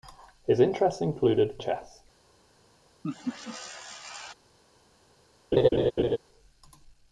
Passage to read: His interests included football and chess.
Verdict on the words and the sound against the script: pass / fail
fail